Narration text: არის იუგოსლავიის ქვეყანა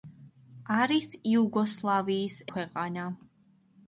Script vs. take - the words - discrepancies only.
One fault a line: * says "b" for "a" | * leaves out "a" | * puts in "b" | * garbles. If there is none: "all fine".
all fine